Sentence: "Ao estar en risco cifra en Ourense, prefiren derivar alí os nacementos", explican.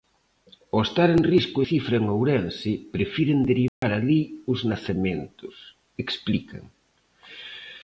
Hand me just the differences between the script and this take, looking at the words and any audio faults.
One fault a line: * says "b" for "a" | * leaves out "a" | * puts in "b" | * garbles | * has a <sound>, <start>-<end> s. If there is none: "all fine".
* has a dropout, 3.7-3.8 s